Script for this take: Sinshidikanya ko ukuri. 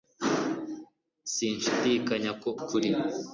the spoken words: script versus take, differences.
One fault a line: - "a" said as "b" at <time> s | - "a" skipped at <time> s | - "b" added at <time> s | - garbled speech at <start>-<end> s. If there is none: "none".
none